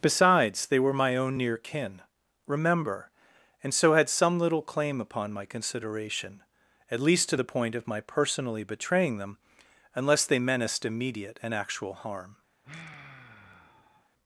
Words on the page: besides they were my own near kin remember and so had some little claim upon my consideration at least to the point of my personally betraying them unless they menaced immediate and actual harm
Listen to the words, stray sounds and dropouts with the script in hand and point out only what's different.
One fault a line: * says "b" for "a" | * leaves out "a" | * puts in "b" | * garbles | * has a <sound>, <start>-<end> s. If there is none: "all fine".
* has a sigh, 12.6-14.1 s